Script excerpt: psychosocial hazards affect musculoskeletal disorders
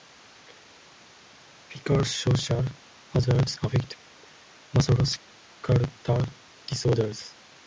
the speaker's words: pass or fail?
pass